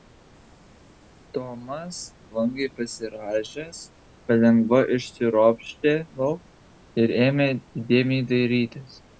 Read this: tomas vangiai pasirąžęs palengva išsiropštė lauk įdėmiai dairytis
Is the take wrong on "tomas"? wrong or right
right